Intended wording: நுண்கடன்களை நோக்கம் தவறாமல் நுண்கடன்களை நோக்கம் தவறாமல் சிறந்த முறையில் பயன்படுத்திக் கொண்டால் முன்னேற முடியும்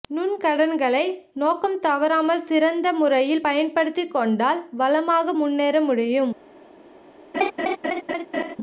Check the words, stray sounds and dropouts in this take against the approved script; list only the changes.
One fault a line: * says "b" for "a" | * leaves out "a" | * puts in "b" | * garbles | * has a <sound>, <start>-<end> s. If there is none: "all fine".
* leaves out "நுண்கடன்களை நோக்கம் தவறாமல்"
* puts in "வளமாக"
* has a laugh, 7.3-8.6 s